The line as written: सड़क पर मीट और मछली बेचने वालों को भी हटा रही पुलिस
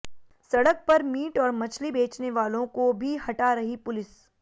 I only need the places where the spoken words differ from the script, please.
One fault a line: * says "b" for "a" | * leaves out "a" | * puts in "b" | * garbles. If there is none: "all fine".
all fine